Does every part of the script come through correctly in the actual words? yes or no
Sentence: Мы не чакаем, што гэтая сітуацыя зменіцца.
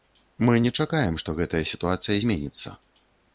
yes